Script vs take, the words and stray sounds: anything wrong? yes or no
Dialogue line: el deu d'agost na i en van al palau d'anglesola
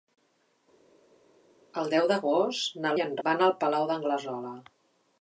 no